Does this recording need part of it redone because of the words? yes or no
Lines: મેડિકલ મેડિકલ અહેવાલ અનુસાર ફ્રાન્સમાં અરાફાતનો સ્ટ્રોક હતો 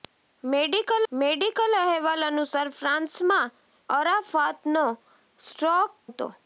no